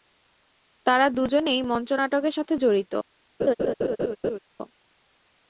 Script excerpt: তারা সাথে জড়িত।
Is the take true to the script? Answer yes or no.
no